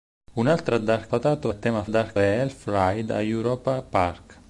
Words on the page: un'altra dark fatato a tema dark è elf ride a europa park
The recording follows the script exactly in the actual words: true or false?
true